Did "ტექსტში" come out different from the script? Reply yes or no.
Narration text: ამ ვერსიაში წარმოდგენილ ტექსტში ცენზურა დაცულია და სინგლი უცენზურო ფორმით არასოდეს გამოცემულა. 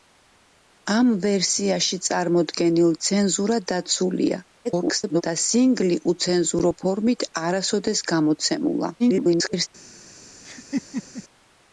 yes